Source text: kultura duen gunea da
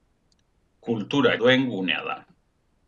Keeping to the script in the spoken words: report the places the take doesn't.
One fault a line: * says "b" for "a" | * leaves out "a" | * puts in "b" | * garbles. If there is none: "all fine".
all fine